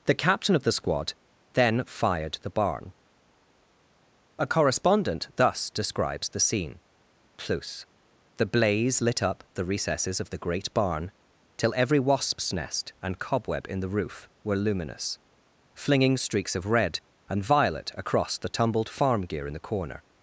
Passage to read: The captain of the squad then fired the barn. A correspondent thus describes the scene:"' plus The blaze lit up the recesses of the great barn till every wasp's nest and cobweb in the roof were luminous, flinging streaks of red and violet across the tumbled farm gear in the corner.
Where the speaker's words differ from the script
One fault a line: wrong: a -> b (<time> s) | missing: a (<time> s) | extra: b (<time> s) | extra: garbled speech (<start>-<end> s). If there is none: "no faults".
no faults